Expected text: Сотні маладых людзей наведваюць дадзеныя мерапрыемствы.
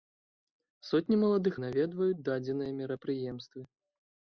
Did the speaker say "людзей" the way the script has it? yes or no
no